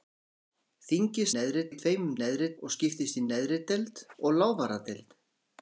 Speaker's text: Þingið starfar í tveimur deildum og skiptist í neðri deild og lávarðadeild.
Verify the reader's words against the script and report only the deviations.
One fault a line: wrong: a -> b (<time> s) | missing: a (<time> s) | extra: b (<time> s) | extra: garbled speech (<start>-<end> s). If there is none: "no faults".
wrong: starfar -> neðri (1.4 s)
wrong: deildum -> neðri (2.2 s)